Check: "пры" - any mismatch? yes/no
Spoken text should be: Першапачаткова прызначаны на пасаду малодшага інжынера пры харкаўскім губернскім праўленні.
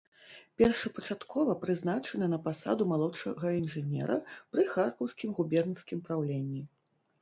no